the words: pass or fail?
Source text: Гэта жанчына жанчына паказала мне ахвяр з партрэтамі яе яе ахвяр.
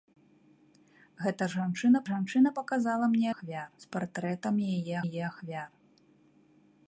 pass